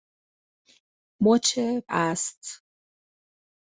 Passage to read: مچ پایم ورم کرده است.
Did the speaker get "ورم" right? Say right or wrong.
wrong